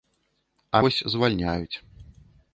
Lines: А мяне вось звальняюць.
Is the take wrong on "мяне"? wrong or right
wrong